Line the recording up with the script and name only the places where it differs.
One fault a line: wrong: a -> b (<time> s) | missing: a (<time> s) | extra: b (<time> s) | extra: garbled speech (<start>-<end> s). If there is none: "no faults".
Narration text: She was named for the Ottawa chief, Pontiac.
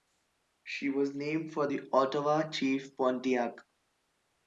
no faults